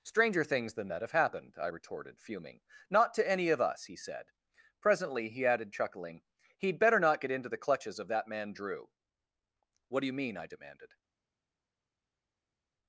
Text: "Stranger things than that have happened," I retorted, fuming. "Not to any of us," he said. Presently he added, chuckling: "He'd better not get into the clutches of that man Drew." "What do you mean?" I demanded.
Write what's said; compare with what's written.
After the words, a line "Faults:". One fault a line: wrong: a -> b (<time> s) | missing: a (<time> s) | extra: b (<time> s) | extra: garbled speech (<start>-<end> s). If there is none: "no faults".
"Stranger things than that have happened," I retorted, fuming. "Not to any of us," he said. Presently he added, chuckling: "He'd better not get into the clutches of that man Drew." "What do you mean?" I demanded.
Faults:
no faults